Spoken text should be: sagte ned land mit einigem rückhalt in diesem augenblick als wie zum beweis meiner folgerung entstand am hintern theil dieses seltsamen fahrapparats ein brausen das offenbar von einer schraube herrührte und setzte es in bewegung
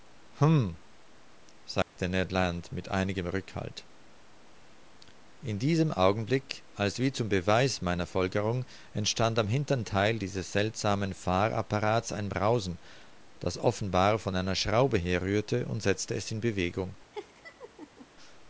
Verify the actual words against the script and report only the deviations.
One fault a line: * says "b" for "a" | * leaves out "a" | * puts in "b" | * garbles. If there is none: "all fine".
all fine